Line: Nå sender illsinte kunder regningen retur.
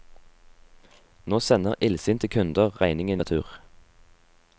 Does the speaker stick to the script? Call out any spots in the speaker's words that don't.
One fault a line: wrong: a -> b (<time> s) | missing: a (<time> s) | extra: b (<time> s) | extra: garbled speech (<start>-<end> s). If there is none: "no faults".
no faults